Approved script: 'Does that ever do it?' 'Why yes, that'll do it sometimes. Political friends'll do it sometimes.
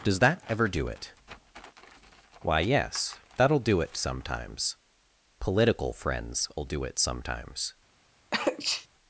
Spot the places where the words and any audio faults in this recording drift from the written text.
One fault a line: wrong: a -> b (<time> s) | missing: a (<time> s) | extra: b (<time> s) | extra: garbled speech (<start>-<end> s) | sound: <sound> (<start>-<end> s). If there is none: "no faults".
sound: sneeze (8.3-8.9 s)